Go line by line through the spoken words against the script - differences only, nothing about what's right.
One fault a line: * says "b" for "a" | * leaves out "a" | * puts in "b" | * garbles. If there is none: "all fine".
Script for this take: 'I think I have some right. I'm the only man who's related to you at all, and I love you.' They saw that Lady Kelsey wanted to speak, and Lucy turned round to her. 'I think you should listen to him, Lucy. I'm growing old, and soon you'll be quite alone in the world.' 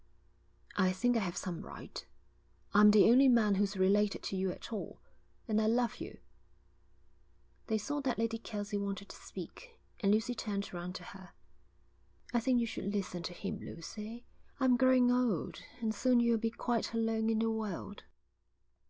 all fine